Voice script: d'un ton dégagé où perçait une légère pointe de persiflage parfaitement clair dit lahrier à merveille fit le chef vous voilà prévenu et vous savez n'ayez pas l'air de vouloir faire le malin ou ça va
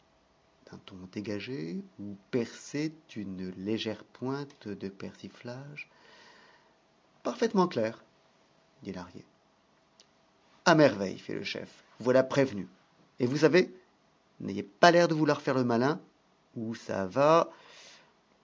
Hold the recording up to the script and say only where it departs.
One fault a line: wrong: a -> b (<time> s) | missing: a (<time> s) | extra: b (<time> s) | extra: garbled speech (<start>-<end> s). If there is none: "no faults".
no faults